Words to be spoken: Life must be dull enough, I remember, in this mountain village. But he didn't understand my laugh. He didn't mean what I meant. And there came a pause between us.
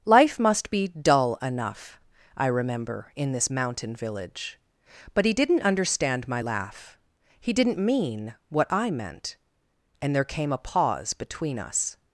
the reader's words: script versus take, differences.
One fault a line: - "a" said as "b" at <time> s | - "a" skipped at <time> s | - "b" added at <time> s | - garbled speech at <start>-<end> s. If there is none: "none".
none